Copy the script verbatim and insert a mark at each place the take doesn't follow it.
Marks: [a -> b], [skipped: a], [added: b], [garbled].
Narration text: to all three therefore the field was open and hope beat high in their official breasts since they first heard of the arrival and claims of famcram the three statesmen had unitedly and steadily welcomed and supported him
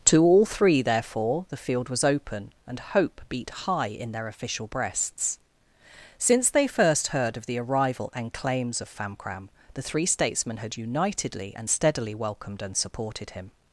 to all three therefore the field was open and hope beat high in their official breasts since they first heard of the arrival and claims of famcram the three statesmen had unitedly and steadily welcomed and supported him